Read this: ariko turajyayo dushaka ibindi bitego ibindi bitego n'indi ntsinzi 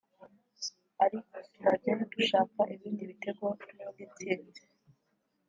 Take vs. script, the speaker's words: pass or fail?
fail